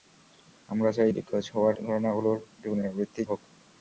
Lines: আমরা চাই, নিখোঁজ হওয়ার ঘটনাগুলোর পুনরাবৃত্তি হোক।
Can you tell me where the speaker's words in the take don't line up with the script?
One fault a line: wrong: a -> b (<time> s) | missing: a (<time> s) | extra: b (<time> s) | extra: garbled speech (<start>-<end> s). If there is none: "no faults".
no faults